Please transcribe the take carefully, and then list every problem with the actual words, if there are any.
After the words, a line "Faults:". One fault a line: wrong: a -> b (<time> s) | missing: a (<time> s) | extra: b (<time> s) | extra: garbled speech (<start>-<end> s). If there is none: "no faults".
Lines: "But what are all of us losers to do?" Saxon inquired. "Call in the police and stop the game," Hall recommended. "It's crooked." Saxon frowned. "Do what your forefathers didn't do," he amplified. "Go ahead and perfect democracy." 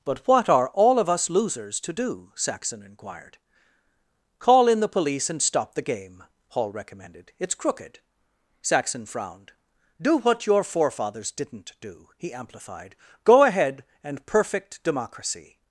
"But what are all of us losers to do?" Saxon inquired. "Call in the police and stop the game," Hall recommended. "It's crooked." Saxon frowned. "Do what your forefathers didn't do," he amplified. "Go ahead and perfect democracy."
Faults:
no faults